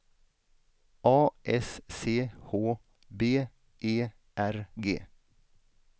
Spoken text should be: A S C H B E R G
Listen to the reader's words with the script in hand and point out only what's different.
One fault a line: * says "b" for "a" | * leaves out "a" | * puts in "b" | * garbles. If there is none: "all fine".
all fine